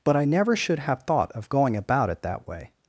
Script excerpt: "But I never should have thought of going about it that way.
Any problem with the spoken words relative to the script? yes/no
no